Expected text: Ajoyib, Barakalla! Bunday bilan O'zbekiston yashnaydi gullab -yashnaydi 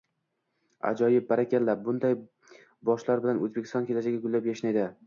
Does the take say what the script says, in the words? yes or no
no